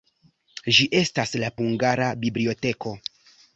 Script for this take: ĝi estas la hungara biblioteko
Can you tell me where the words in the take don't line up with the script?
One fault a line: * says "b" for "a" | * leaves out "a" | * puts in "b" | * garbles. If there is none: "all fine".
all fine